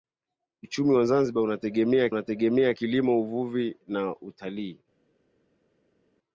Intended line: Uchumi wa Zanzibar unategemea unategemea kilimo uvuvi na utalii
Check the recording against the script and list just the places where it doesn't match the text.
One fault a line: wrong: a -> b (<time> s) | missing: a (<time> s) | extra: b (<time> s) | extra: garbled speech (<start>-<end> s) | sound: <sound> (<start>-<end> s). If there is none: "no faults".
no faults